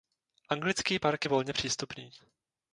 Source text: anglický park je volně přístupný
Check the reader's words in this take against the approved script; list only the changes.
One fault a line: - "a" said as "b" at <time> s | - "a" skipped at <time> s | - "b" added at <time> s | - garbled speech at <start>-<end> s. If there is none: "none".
none